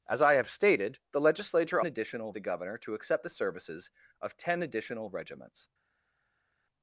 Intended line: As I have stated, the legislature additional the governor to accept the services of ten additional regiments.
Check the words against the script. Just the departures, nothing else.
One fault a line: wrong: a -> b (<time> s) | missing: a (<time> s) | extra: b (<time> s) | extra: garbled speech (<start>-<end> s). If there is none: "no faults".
no faults